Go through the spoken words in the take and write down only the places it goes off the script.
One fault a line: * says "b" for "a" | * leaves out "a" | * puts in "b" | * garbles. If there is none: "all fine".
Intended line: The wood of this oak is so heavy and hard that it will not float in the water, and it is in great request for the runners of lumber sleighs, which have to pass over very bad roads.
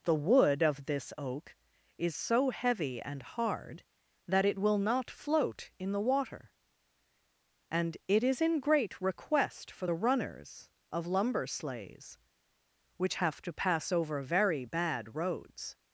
all fine